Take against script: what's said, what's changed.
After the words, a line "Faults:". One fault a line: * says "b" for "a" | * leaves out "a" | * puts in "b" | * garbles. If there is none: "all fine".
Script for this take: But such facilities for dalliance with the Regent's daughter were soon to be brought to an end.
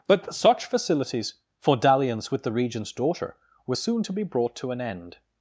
But such facilities for dalliance with the Regent's daughter were soon to be brought to an end.
Faults:
all fine